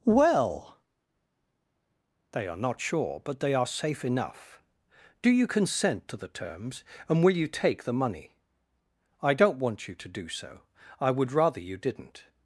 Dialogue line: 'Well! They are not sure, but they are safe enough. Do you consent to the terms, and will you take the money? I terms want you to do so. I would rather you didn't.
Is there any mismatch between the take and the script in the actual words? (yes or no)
yes